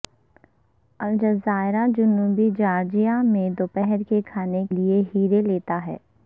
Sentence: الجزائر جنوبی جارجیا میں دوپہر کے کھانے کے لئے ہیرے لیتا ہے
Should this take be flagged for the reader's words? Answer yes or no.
yes